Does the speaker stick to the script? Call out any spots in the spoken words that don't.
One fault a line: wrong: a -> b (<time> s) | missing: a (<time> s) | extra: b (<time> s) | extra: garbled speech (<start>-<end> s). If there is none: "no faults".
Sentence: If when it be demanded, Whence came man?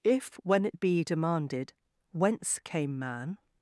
no faults